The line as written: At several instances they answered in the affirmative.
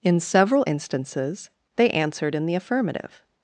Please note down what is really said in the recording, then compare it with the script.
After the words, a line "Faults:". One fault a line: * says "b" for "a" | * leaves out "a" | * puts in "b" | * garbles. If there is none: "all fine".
In several instances they answered in the affirmative.
Faults:
* says "In" for "At"